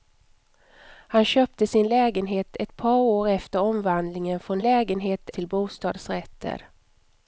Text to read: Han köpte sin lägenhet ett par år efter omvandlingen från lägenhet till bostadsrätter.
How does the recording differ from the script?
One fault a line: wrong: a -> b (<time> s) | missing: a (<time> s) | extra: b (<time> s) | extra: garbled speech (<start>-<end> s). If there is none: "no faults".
no faults